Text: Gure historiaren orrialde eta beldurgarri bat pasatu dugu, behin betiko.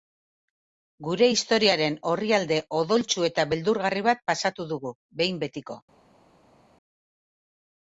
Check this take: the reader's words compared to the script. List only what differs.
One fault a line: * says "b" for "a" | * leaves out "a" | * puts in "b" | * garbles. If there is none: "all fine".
* puts in "odoltsu"